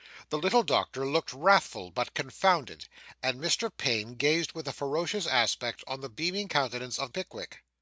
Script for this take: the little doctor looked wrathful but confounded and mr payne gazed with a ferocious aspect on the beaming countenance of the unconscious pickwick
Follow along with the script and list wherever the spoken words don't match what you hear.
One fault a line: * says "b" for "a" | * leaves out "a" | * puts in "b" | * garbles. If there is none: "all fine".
* leaves out "the unconscious"